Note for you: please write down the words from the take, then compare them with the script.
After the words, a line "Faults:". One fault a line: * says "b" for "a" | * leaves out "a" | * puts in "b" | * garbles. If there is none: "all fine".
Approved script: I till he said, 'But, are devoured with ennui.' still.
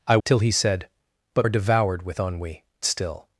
I till he said, 'But, are devoured with ennui.' still.
Faults:
all fine